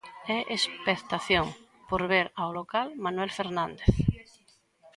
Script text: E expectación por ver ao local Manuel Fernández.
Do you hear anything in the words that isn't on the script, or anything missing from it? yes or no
no